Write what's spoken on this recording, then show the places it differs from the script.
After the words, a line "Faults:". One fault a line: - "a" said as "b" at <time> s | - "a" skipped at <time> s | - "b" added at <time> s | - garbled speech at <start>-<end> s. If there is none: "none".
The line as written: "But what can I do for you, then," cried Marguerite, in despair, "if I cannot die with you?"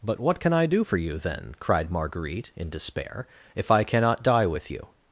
"But what can I do for you, then," cried Marguerite, in despair, "if I cannot die with you?"
Faults:
none